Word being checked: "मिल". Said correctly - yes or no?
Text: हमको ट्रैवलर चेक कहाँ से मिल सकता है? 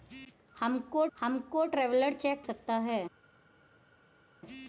no